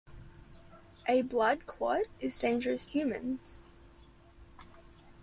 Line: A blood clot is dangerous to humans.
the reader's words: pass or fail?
fail